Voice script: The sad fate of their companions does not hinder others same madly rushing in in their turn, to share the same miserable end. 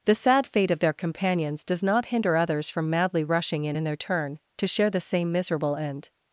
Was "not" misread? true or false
false